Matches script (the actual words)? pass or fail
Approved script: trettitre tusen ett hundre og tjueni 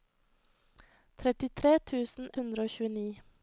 fail